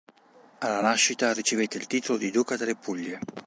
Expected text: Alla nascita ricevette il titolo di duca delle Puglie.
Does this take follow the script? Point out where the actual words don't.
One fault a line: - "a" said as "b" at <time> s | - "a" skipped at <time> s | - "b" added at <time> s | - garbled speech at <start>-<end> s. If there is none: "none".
none